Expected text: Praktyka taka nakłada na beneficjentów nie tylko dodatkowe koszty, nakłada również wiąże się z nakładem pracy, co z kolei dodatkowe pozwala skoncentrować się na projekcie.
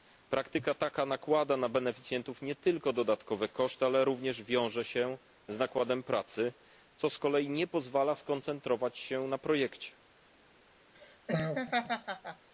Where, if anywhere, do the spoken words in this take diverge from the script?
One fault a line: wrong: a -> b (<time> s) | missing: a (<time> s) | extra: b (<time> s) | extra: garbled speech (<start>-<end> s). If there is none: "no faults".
wrong: nakłada -> ale (3.9 s)
wrong: dodatkowe -> nie (7.5 s)